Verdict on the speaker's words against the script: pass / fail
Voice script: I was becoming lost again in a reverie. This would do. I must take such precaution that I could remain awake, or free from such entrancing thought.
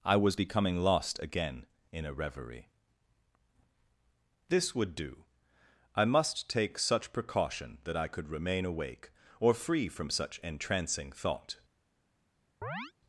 pass